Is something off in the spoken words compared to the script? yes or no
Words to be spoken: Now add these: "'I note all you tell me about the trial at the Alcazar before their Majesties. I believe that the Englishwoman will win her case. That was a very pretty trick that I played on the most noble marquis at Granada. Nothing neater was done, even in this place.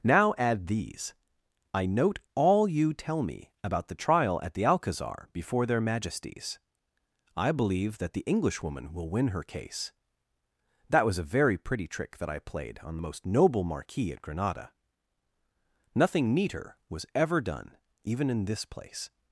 yes